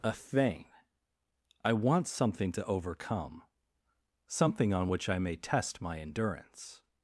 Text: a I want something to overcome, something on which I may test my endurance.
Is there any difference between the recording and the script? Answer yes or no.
yes